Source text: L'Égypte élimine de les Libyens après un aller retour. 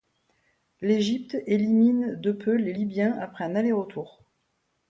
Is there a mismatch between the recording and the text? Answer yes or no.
yes